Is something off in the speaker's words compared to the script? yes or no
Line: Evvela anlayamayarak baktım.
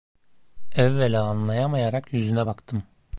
yes